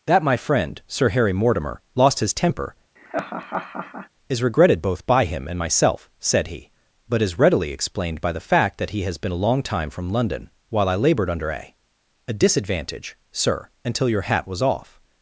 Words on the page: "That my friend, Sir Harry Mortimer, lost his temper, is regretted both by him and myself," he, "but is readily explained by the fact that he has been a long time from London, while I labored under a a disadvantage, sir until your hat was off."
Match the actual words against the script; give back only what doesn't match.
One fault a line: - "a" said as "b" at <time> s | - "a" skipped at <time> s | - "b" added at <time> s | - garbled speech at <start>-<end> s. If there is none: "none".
- "said" added at 6.2 s